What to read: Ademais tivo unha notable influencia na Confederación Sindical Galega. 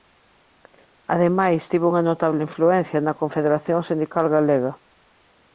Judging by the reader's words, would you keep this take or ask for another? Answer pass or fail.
pass